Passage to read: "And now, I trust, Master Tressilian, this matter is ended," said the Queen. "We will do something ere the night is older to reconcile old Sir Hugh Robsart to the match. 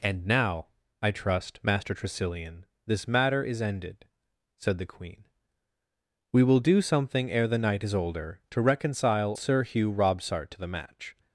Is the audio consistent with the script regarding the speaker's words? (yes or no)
no